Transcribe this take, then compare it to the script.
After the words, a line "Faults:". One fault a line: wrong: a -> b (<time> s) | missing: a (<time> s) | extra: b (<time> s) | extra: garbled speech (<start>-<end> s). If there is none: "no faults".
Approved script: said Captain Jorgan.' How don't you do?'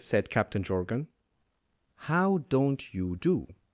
said Captain Jorgan.' How don't you do?'
Faults:
no faults